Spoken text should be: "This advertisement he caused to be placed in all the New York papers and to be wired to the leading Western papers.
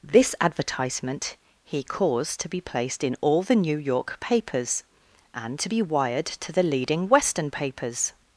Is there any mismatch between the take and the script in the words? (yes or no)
no